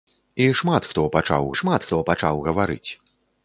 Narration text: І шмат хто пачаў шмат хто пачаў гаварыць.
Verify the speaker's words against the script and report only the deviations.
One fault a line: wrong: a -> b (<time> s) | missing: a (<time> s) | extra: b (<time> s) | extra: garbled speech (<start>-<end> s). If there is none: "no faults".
no faults